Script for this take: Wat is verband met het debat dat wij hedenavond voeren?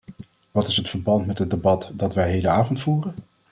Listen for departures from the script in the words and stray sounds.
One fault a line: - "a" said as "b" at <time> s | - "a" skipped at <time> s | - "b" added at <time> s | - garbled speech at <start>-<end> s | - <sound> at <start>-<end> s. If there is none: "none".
- "het" added at 0.8 s